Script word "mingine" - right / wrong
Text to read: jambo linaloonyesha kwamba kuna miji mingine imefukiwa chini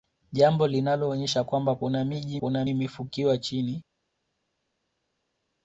wrong